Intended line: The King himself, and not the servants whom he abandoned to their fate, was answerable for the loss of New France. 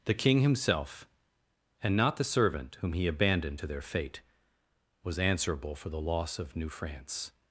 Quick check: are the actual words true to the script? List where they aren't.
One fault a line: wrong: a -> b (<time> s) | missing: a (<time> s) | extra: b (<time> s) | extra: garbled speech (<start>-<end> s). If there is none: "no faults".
wrong: servants -> servant (2.2 s)